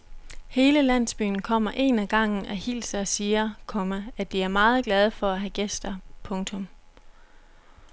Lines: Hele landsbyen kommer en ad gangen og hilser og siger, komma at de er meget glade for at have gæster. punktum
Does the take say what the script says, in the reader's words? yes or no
yes